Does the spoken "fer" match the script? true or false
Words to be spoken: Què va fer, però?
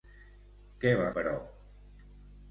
false